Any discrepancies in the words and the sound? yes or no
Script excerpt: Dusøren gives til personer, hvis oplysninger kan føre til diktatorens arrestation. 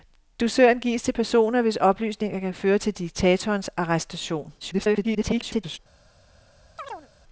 yes